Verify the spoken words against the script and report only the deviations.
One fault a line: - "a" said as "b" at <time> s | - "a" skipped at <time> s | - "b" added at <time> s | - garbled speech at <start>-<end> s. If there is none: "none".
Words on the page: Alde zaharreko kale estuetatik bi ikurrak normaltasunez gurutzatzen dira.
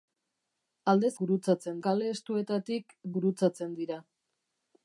- "zaharreko" said as "gurutzatzen" at 1.2 s
- "bi ikurrak normaltasunez" skipped at 3.0 s